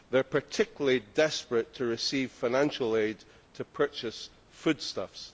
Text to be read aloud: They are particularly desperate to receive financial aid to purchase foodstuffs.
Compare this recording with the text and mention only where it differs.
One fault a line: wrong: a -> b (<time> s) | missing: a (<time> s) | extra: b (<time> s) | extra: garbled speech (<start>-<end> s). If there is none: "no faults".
no faults